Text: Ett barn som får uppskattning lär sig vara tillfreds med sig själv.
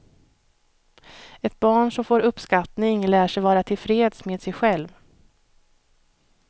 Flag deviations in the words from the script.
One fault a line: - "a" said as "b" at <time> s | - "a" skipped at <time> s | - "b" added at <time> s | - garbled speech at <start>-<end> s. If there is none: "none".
none